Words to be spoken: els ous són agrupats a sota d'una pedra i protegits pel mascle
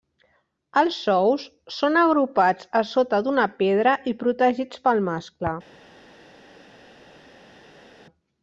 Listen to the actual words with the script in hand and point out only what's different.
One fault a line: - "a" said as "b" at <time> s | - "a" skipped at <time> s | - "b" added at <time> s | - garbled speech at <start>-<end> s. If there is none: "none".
none